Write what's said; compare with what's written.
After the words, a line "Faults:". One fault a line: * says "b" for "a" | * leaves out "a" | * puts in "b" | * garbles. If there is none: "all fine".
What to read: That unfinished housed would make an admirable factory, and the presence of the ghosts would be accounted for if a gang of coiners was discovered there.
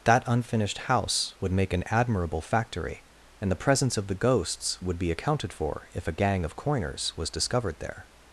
That unfinished house would make an admirable factory, and the presence of the ghosts would be accounted for if a gang of coiners was discovered there.
Faults:
* says "house" for "housed"